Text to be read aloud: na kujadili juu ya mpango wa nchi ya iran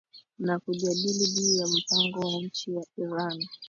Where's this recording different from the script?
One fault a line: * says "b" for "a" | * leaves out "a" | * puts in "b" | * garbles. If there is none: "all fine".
all fine